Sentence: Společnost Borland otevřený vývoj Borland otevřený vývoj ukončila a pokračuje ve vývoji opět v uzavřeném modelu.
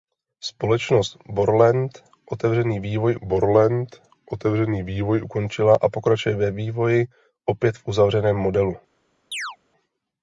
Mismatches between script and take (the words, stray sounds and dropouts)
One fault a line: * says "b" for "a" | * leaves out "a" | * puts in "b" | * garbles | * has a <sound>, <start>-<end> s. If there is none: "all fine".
* has a chirp, 9.3-9.6 s